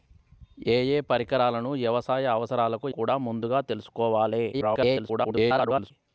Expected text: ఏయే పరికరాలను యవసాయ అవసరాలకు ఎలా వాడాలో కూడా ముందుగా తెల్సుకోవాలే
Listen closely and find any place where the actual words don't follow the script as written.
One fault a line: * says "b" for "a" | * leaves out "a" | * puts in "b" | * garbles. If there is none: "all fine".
* leaves out "ఎలా వాడాలో"
* garbles